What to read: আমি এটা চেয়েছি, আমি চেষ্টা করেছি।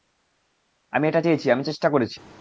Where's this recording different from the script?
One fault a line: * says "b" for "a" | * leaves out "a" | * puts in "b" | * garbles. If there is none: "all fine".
all fine